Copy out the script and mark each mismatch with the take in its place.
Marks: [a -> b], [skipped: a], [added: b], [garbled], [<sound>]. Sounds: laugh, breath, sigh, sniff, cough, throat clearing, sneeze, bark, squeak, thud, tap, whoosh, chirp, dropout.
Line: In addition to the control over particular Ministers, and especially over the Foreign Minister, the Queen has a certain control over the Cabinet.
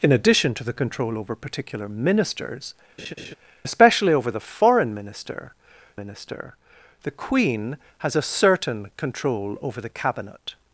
In addition to the control over particular Ministers, [skipped: and] [laugh] especially over the Foreign Minister, [added: Minister] the Queen has a certain control over the Cabinet.